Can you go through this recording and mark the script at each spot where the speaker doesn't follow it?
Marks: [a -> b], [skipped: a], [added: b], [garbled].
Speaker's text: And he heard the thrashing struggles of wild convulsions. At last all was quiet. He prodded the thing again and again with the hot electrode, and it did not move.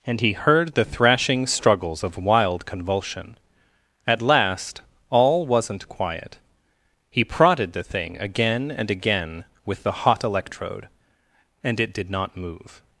And he heard the thrashing struggles of wild [convulsions. -> convulsion] At last all [was -> wasn't] quiet. He prodded the thing again and again with the hot electrode, and it did not move.